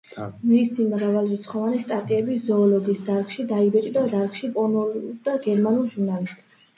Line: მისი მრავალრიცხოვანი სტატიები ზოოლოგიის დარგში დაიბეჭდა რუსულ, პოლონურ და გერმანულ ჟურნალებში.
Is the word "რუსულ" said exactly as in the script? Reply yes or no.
no